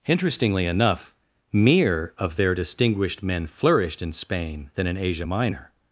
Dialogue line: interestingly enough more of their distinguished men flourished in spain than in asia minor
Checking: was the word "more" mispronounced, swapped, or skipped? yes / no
yes